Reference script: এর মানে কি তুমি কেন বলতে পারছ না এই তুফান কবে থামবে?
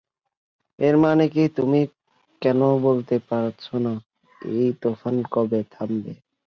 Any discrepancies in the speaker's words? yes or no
no